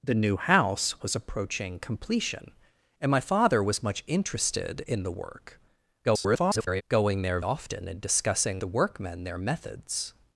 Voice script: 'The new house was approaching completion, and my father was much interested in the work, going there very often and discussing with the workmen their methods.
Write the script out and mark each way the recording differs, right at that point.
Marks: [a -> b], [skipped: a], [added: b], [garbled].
'The new house was approaching completion, and my father was much interested in the work, [garbled] going there [skipped: very] often and discussing [skipped: with] the workmen their methods.